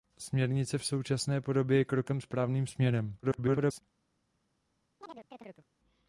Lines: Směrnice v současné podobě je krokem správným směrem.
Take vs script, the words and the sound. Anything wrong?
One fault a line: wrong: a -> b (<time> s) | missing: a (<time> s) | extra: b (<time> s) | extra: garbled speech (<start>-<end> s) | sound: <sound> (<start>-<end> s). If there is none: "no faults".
extra: garbled speech (3.2-3.8 s)
sound: chirp (5.0-5.7 s)